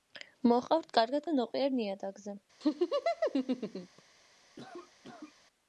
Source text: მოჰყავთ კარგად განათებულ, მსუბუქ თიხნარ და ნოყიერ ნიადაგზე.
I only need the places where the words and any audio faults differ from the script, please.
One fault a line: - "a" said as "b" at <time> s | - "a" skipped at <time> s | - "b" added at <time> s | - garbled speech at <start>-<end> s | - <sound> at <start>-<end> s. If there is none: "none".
- "განათებულ მსუბუქ თიხნარ" skipped at 1.3 s
- laugh at 2.6-4.0 s
- cough at 4.6-5.3 s